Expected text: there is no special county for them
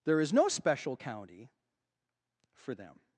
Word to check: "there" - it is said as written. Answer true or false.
true